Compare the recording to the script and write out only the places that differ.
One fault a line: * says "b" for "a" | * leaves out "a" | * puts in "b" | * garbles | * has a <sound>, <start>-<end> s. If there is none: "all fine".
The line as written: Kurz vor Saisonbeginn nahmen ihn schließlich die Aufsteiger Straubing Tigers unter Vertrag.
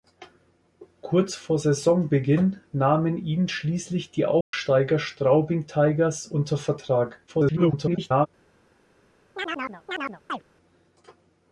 * has a dropout, 4.4-4.5 s
* garbles
* has a chirp, 9.4-10.4 s